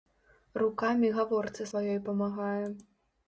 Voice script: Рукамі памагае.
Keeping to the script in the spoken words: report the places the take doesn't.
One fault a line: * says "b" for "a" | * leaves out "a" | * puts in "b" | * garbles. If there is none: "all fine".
* puts in "гаворцы сваёй"